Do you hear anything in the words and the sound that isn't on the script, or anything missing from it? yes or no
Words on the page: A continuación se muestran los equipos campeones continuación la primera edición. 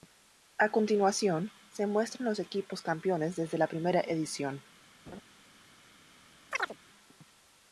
yes